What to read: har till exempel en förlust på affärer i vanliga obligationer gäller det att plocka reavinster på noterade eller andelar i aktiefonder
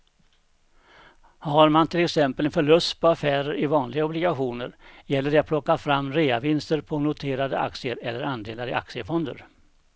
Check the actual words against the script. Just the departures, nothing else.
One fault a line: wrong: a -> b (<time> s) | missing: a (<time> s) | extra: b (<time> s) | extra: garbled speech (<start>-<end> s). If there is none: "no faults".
extra: man (1.7 s)
extra: fram (5.8 s)
extra: aktier (7.6 s)